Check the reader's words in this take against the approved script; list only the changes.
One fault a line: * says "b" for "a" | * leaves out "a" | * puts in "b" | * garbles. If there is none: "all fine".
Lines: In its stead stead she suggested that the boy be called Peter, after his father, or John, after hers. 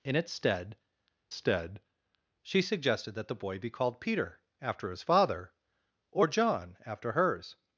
all fine